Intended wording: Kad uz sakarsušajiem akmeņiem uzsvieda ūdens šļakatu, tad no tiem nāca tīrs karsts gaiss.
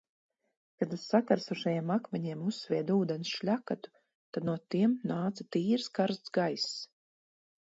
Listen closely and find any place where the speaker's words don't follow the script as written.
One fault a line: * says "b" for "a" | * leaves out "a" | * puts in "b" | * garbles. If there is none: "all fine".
all fine